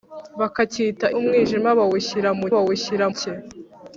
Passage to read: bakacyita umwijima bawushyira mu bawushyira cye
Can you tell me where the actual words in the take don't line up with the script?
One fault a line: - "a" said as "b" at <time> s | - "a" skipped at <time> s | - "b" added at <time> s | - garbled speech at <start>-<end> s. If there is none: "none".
none